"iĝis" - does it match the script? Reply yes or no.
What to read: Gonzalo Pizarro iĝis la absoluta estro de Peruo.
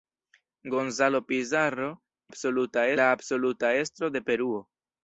no